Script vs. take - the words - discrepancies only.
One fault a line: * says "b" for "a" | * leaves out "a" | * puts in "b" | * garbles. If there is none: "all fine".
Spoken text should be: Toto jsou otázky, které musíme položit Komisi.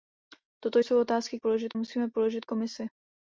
* says "položit" for "které"